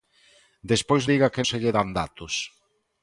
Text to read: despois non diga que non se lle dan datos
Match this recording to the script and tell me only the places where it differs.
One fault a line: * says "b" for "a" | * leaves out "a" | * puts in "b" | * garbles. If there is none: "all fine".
* leaves out "non"
* leaves out "non"